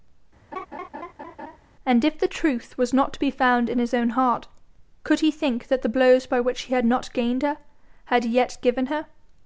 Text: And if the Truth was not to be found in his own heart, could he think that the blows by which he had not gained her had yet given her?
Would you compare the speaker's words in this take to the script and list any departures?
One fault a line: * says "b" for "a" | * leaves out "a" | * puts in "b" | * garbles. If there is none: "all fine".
all fine